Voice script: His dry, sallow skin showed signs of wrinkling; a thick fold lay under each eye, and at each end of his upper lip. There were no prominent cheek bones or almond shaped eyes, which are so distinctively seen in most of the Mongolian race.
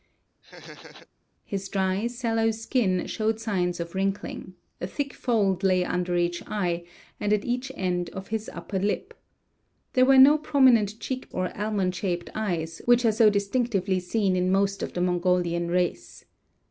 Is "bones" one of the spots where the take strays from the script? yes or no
yes